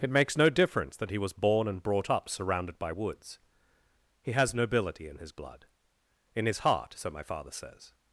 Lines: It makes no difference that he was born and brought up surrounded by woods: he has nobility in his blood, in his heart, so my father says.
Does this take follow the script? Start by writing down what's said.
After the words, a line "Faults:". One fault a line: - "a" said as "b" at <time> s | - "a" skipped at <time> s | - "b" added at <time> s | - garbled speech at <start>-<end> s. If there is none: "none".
It makes no difference that he was born and brought up surrounded by woods: he has nobility in his blood, in his heart, so my father says.
Faults:
none